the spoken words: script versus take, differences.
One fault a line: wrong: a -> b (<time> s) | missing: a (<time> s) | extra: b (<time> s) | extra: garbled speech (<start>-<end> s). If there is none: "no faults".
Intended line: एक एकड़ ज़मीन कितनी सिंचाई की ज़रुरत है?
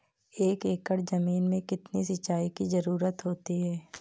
extra: में (1.4 s)
extra: होती (3.2 s)